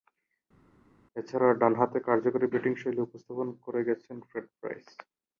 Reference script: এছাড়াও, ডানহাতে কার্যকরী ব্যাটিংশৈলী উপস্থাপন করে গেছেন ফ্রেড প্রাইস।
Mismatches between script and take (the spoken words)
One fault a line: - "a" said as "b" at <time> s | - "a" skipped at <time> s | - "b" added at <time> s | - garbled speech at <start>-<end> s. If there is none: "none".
none